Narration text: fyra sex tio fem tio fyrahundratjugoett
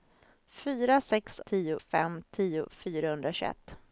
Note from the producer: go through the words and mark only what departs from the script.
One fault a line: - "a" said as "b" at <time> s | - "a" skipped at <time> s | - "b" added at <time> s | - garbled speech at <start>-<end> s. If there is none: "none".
none